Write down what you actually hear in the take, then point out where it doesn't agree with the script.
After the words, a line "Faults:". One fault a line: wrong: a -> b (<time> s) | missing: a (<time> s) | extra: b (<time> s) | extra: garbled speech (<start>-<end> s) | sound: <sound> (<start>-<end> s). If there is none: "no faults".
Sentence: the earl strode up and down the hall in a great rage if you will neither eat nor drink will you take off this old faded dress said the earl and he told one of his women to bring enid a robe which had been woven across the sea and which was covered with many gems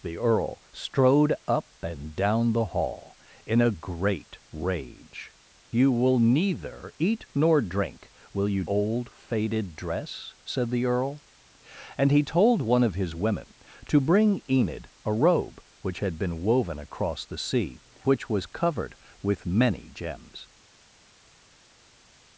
the earl strode up and down the hall in a great rage you will neither eat nor drink will you old faded dress said the earl and he told one of his women to bring enid a robe which had been woven across the sea which was covered with many gems
Faults:
missing: if (5.3 s)
missing: take off this (8.6 s)
missing: and (17.8 s)